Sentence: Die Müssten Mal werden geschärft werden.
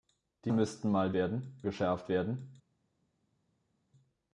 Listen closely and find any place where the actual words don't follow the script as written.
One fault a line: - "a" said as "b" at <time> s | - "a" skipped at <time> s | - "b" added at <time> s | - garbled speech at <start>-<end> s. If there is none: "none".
none